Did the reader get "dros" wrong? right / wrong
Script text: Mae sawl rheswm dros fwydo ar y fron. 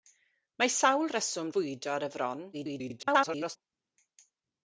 wrong